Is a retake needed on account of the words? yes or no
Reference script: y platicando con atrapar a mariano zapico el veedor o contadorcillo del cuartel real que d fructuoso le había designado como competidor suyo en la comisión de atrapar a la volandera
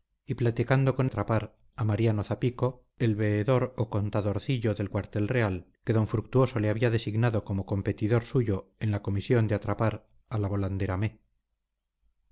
no